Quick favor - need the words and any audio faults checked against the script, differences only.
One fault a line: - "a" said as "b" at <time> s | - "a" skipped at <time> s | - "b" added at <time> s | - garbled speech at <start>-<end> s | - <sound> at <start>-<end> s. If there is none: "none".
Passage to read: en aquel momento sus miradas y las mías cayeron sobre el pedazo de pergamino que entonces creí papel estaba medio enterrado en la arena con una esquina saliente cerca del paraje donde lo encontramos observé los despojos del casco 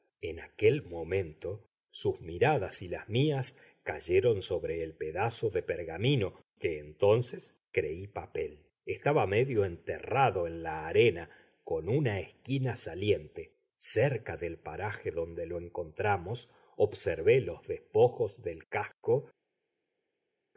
none